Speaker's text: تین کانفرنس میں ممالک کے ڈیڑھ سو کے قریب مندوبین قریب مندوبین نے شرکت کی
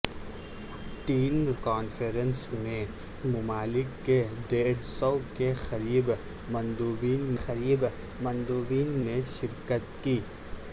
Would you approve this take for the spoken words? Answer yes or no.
yes